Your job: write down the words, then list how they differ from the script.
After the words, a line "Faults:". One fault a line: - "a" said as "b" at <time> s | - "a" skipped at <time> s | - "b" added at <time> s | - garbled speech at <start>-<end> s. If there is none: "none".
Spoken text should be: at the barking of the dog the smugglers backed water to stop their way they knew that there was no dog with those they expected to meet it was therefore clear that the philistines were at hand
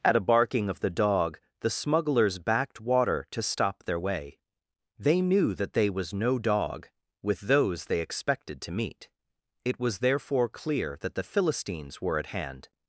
at a barking of the dog the smugglers backed water to stop their way they knew that they was no dog with those they expected to meet it was therefore clear that the philistines were at hand
Faults:
- "the" said as "a" at 0.1 s
- "there" said as "they" at 5.7 s